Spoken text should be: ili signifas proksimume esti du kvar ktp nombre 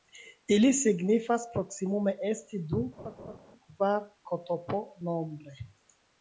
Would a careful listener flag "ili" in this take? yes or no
no